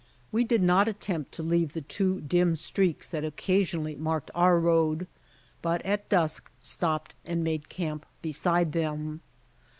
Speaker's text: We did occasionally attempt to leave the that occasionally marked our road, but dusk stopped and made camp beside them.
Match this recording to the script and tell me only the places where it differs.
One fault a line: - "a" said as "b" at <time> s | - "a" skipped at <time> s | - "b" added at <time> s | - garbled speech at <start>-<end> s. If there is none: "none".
- "occasionally" said as "not" at 0.6 s
- "two dim streaks" added at 1.8 s
- "at" added at 5.8 s